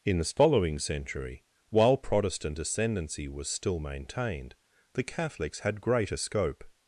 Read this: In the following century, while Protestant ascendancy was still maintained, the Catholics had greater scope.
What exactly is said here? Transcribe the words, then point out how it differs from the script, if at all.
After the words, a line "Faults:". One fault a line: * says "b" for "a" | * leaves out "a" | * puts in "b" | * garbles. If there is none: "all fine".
In the following century, while Protestant ascendancy was still maintained, the Catholics had greater scope.
Faults:
all fine